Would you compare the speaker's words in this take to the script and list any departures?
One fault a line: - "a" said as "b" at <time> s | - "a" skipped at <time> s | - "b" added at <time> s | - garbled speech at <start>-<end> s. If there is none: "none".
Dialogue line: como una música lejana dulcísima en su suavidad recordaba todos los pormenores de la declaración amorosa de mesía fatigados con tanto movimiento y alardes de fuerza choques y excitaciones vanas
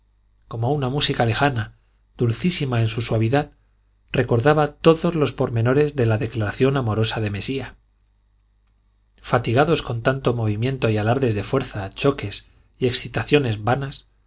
none